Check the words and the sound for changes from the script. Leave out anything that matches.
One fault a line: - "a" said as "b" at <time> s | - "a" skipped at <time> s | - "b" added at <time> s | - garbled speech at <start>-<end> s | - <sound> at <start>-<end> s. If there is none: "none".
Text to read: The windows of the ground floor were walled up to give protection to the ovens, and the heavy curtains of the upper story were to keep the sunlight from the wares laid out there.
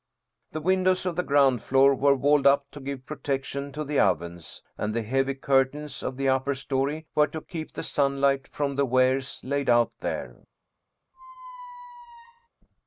- squeak at 11.1-12.5 s